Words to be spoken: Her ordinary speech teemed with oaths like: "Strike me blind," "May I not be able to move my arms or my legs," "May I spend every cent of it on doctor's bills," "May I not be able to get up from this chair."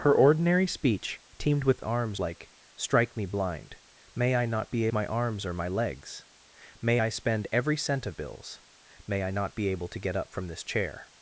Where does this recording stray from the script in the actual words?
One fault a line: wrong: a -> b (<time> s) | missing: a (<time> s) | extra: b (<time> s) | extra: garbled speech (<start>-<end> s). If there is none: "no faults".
wrong: oaths -> arms (1.8 s)
missing: able to move (4.9 s)
missing: it on doctor's (8.2 s)